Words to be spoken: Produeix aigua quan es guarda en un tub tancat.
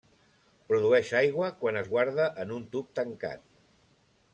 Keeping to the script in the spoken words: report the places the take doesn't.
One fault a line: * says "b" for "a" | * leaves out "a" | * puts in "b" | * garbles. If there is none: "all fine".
all fine